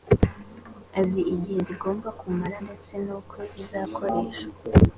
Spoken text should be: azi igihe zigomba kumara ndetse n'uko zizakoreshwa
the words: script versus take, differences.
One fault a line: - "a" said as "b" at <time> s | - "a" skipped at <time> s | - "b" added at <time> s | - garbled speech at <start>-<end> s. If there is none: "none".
none